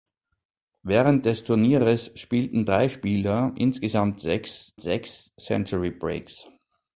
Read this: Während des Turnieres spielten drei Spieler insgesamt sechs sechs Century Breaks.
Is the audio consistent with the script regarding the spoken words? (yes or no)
yes